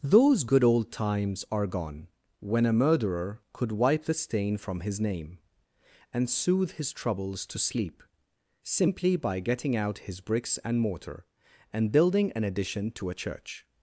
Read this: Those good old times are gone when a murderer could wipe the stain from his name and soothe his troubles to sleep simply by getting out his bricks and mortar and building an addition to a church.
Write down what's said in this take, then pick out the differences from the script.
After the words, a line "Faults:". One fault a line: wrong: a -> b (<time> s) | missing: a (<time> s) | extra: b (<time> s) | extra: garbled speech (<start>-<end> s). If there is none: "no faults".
Those good old times are gone when a murderer could wipe the stain from his name and soothe his troubles to sleep simply by getting out his bricks and mortar and building an addition to a church.
Faults:
no faults